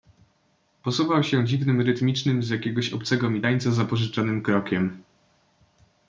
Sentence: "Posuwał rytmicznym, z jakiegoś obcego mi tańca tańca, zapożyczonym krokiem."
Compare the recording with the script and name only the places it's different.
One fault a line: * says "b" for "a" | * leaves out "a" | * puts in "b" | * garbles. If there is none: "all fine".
* puts in "się dziwnym"
* leaves out "tańca"